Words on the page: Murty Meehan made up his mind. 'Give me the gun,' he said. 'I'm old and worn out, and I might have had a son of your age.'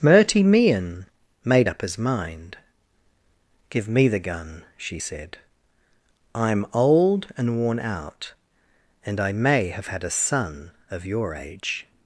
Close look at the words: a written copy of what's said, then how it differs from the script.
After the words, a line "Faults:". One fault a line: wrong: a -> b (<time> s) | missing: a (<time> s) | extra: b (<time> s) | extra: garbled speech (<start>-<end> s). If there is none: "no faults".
Murty Meehan made up his mind. 'Give me the gun,' she said. 'I'm old and worn out, and I may have had a son of your age.'
Faults:
wrong: he -> she (4.8 s)
wrong: might -> may (9.3 s)